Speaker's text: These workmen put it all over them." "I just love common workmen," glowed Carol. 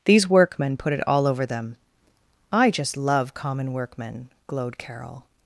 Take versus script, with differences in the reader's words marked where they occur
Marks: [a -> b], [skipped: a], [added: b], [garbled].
These workmen put it all over them." "I just love common workmen," glowed Carol.